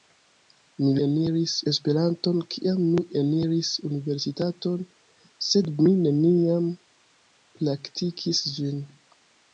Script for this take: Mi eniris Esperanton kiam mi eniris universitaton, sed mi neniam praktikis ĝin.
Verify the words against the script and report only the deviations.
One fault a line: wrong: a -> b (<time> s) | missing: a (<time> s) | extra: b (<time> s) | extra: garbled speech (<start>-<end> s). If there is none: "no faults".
no faults